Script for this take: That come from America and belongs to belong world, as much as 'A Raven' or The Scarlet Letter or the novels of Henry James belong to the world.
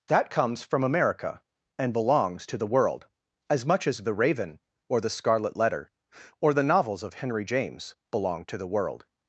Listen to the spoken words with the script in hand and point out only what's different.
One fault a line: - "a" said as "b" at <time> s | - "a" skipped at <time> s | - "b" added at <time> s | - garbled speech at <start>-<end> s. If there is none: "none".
- "come" said as "comes" at 0.3 s
- "belong" said as "the" at 2.6 s
- "A" said as "The" at 4.0 s